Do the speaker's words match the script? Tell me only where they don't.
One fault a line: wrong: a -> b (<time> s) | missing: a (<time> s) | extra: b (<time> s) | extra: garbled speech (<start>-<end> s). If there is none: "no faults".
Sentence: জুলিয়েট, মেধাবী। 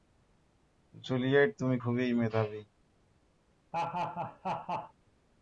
extra: তুমি খুবই (1.6 s)